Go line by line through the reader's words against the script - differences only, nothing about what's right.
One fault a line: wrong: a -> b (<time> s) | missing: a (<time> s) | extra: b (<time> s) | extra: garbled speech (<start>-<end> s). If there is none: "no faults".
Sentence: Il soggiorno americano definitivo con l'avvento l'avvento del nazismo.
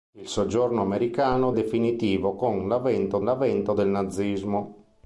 no faults